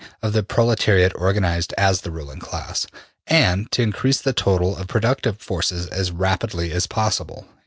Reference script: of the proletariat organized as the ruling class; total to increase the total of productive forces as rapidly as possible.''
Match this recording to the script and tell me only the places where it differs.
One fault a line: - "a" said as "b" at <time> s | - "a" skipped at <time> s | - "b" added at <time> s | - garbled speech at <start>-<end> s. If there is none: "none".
- "total" said as "and" at 3.3 s